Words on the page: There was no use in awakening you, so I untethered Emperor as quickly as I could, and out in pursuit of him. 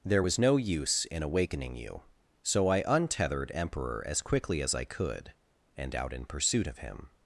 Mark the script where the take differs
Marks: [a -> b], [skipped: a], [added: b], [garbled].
There was no use in awakening you, so I untethered Emperor as quickly as I could, and out in pursuit of him.